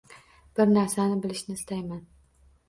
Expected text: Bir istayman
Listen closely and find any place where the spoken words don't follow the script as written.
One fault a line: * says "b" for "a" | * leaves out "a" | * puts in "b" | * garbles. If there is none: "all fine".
* puts in "narsani bilishni"